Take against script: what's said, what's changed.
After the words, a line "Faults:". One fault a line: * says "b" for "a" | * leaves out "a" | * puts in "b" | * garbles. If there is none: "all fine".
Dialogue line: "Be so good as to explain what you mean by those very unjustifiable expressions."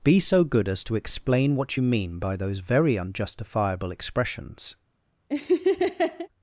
"Be so good as to explain what you mean by those very unjustifiable expressions."
Faults:
all fine